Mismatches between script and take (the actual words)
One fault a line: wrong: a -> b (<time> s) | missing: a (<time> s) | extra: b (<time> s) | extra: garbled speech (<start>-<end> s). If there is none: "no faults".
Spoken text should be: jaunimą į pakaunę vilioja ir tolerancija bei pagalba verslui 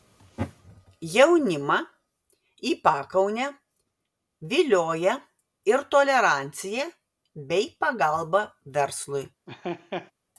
no faults